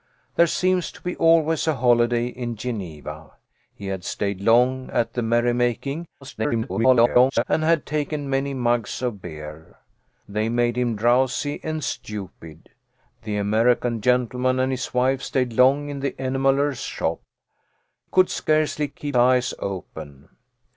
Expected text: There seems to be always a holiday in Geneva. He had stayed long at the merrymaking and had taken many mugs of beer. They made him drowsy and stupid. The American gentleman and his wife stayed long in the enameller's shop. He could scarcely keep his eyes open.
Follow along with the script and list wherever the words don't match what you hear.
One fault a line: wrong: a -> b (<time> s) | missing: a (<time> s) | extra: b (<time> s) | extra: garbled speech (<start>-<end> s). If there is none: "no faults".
extra: garbled speech (6.2-7.4 s)
missing: He (17.2 s)
missing: his (19.2 s)